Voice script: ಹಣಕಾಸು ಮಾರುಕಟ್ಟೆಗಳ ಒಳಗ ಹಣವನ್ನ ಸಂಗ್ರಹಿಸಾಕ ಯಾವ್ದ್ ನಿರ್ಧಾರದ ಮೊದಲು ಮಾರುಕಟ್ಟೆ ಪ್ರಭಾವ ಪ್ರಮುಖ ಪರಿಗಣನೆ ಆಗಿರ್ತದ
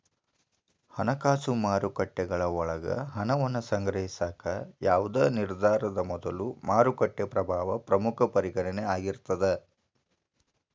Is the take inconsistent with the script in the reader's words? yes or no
no